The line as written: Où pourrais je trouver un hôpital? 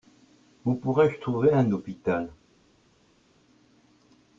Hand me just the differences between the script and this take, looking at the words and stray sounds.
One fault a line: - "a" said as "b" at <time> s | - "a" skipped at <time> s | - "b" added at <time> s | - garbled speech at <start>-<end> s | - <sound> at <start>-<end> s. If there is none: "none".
none